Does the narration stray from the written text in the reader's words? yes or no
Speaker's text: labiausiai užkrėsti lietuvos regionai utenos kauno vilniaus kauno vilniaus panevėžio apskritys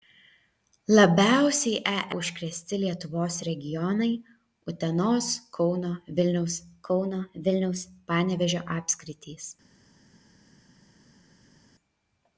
no